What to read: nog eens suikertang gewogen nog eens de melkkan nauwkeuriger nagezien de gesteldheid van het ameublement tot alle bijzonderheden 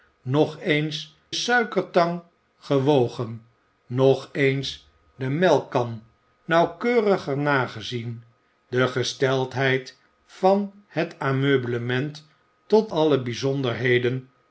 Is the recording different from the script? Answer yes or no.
no